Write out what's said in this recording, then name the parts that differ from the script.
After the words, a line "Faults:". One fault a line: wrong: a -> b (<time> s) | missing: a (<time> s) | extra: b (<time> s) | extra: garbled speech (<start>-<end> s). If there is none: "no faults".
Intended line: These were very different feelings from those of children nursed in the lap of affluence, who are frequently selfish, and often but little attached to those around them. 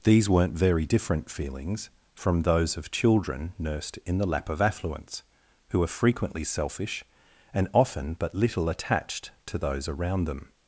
These weren't very different feelings from those of children nursed in the lap of affluence, who are frequently selfish, and often but little attached to those around them.
Faults:
wrong: were -> weren't (0.3 s)